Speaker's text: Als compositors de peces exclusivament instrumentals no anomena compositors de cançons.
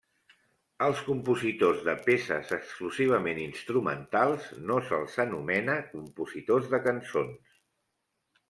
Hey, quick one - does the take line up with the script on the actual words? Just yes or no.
no